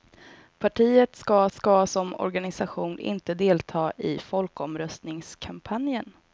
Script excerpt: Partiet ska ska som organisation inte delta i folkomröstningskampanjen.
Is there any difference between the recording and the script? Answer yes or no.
no